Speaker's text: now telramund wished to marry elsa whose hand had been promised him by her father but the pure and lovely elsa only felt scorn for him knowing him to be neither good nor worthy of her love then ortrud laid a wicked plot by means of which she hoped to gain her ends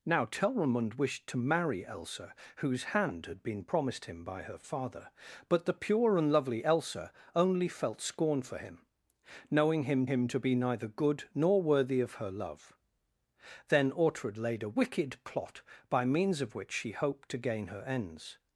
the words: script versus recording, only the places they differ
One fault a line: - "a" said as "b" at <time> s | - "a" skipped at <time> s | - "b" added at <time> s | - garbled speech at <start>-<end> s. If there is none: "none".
- "him" added at 10.0 s